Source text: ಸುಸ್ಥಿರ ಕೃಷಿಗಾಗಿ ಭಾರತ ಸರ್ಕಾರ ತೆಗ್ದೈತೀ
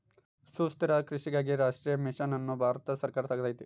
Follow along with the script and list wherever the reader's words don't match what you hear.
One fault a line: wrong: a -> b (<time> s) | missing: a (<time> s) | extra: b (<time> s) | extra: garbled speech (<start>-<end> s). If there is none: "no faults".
extra: ರಾಷ್ಟ್ರೀಯ ಮಿಷನ್ ಅನ್ನು (1.6 s)